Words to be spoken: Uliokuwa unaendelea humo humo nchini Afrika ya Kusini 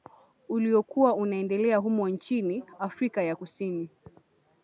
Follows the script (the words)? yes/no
no